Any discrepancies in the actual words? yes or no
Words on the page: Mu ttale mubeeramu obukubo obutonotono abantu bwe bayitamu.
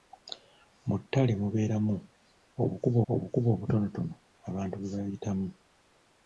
yes